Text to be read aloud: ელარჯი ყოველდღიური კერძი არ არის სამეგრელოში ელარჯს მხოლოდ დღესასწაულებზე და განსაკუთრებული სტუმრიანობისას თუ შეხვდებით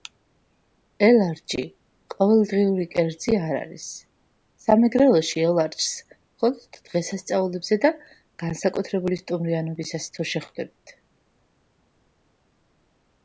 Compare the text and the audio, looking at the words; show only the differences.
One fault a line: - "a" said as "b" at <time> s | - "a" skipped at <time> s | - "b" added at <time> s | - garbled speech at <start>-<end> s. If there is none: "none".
none